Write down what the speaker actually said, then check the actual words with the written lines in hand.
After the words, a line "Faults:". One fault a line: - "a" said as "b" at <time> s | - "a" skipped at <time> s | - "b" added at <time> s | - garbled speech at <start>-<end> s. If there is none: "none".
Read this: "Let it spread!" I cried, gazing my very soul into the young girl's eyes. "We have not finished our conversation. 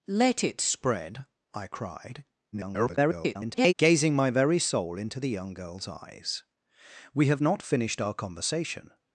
"Let it spread!" I cried, [garbled] gazing my very soul into the young girl's eyes. "We have not finished our conversation.
Faults:
- garbled speech at 2.5-3.7 s